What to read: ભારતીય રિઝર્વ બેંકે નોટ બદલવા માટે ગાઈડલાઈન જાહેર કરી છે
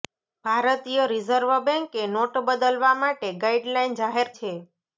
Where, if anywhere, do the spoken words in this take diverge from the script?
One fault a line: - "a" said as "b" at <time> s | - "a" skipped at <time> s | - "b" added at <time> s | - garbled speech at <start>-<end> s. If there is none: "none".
- "કરી" skipped at 4.3 s